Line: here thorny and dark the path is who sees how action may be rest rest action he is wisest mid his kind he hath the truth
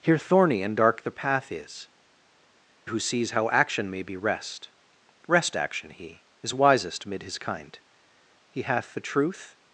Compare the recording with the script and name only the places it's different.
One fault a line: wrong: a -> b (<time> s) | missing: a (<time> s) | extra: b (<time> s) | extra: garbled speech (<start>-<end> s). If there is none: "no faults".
no faults